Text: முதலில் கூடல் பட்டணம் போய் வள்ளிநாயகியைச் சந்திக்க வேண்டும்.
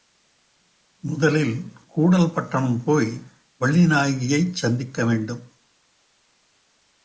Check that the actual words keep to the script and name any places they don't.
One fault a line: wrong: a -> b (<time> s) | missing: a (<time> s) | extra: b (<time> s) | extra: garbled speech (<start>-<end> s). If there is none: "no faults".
no faults